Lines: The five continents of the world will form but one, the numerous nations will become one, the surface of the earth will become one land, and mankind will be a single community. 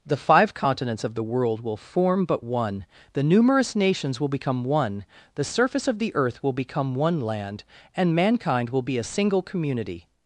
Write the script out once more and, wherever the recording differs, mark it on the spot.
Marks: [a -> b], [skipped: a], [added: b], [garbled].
The five continents of the world will form but one, the numerous nations will become one, the surface of the earth will become one land, and mankind will be a single community.